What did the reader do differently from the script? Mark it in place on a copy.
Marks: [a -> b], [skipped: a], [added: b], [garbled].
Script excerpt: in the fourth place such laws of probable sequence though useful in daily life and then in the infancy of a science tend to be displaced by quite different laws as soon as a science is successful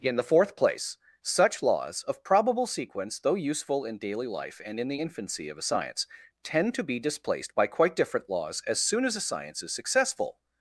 in the fourth place such laws of probable sequence though useful in daily life and [skipped: then] in the infancy of a science tend to be displaced by quite different laws as soon as a science is successful